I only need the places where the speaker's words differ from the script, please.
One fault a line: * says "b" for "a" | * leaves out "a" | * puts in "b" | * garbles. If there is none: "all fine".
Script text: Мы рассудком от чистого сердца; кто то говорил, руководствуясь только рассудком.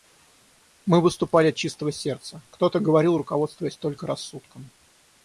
* says "выступали" for "рассудком"